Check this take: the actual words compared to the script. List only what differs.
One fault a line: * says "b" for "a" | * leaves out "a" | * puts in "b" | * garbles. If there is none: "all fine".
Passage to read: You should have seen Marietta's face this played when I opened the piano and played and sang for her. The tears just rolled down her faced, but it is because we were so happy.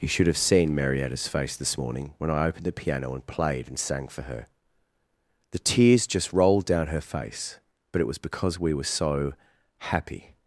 * says "morning" for "played"
* says "face" for "faced"
* says "was" for "is"